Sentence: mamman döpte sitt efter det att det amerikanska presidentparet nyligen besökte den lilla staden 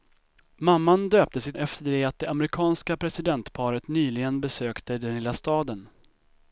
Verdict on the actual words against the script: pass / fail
pass